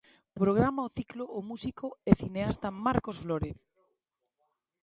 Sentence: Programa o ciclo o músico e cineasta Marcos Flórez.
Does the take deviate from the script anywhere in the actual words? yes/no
no